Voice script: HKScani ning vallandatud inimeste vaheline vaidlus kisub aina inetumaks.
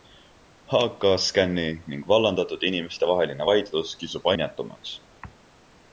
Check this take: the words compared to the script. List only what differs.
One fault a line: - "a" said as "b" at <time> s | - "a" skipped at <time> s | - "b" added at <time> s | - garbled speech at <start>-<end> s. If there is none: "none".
- "aina" skipped at 4.3 s